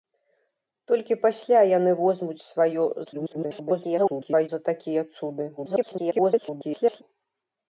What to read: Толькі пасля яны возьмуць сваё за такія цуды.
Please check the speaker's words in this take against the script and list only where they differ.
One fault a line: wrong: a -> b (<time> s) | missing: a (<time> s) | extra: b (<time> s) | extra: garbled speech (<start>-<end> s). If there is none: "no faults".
extra: garbled speech (3.0-4.5 s)
extra: garbled speech (5.6-7.0 s)